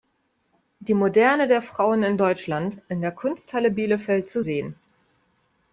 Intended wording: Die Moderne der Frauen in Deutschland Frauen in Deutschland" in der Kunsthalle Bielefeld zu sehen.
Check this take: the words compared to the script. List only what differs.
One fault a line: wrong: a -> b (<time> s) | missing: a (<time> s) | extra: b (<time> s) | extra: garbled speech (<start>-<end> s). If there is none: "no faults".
missing: Frauen in Deutschland (2.8 s)